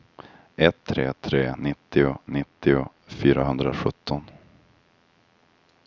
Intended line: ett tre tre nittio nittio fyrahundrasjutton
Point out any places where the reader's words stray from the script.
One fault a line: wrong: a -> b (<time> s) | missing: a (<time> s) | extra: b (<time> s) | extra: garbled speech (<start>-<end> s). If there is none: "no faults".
no faults